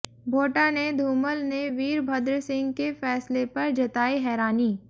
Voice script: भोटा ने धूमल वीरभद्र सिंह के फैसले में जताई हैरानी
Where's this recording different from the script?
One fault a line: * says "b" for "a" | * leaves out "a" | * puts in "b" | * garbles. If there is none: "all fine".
* puts in "ने"
* says "पर" for "में"